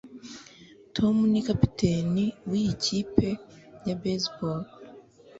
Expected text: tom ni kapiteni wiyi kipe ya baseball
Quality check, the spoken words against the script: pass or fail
pass